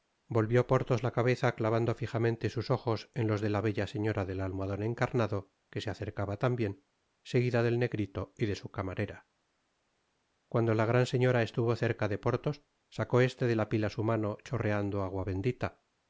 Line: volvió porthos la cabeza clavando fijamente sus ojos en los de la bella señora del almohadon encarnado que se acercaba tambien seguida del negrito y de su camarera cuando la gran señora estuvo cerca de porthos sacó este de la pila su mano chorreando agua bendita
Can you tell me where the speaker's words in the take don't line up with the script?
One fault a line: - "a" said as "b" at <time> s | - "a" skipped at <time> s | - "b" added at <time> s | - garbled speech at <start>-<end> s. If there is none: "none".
none